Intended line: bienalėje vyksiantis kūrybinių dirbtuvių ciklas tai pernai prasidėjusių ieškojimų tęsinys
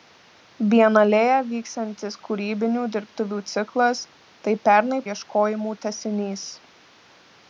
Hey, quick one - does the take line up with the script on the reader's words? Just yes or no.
no